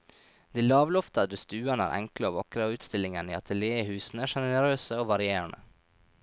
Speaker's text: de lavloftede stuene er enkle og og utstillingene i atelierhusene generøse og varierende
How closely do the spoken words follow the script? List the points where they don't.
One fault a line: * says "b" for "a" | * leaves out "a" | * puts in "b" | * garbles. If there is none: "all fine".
* puts in "vakre"